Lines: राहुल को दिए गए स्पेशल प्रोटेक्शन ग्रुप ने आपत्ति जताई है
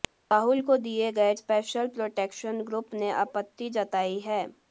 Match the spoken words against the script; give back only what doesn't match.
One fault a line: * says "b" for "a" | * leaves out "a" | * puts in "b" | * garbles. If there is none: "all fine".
all fine